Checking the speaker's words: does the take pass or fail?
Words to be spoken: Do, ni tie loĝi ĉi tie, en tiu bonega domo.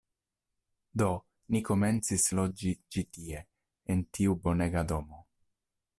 fail